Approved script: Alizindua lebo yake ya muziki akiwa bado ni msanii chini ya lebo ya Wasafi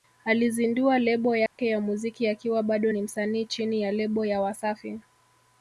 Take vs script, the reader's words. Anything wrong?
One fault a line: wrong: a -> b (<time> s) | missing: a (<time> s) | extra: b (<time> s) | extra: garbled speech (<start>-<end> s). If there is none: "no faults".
no faults